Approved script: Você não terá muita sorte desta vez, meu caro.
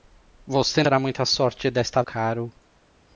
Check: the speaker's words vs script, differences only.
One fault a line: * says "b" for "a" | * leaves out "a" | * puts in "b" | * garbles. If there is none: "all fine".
* leaves out "não"
* leaves out "vez meu"